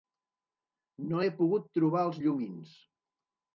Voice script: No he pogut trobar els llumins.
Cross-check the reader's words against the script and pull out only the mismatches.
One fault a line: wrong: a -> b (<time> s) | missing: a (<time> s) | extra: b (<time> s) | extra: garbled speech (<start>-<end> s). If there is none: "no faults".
no faults